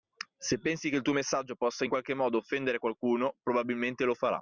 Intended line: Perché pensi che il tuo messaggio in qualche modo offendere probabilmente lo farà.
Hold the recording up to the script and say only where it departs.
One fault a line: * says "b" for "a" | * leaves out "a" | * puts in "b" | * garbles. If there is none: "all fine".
* says "Se" for "Perché"
* puts in "possa"
* puts in "qualcuno"